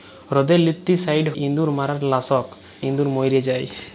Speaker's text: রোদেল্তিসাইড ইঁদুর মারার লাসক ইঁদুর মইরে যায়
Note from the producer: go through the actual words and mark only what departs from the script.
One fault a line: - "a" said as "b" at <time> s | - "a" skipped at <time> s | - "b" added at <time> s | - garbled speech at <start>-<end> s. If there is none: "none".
none